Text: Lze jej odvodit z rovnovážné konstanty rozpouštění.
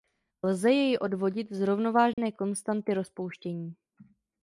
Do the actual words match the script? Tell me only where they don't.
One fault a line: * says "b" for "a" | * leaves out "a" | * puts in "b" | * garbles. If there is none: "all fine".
all fine